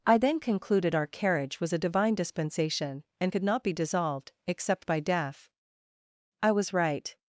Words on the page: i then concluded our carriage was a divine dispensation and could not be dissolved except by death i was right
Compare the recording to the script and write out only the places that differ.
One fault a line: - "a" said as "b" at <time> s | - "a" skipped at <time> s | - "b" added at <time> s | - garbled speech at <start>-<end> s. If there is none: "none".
none